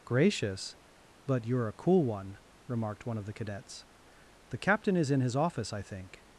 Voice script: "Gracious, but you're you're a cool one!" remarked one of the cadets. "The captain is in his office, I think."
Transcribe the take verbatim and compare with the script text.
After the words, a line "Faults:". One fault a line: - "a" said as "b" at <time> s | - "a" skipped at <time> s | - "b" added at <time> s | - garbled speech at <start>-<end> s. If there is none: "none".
"Gracious, but you're a cool one!" remarked one of the cadets. "The captain is in his office, I think."
Faults:
- "you're" skipped at 1.7 s